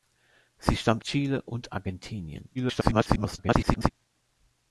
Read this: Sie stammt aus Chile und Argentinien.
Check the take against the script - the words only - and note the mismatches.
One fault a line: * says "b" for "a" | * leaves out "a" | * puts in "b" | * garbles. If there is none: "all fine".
* leaves out "aus"
* garbles